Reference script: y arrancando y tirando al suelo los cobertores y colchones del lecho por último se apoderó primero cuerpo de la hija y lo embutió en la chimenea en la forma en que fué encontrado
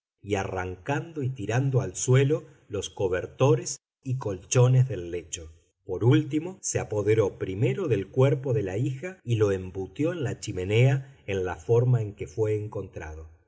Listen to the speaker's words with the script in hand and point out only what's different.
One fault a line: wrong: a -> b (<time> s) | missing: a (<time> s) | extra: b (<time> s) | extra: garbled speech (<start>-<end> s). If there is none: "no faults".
extra: del (7.9 s)